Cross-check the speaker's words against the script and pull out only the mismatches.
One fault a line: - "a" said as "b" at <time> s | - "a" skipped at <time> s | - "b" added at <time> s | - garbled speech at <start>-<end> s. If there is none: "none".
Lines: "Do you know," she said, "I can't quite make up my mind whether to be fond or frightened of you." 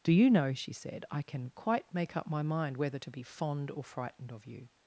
- "can't" said as "can" at 1.2 s